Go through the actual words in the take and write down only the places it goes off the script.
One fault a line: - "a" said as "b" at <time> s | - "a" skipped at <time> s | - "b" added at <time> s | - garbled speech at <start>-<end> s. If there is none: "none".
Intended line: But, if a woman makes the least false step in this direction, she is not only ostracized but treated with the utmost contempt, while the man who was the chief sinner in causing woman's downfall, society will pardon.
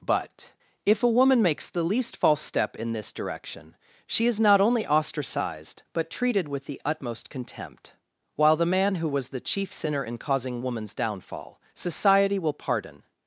none